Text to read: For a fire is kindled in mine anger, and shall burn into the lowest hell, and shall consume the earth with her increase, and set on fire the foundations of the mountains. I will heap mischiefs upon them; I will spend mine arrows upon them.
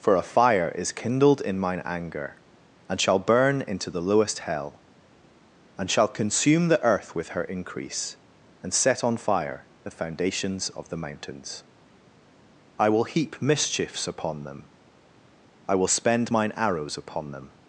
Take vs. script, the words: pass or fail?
pass